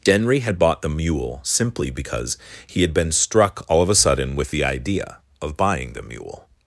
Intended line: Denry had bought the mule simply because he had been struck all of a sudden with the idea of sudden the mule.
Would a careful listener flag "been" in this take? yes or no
no